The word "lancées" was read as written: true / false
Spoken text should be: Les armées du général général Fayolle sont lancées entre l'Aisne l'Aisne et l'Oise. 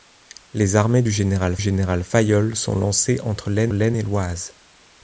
true